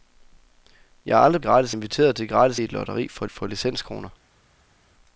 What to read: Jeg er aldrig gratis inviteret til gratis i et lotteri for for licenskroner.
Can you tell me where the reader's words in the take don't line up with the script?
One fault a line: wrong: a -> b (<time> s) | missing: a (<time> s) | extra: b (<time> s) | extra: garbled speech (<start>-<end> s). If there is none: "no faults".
no faults